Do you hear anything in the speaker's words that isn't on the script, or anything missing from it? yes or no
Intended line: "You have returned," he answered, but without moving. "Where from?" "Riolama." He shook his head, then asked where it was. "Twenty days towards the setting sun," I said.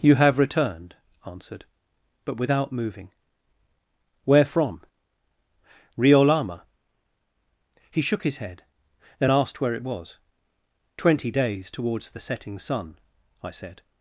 yes